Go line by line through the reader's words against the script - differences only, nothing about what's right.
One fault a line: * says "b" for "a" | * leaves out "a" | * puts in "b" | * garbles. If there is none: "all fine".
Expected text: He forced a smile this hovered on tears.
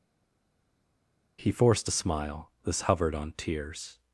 all fine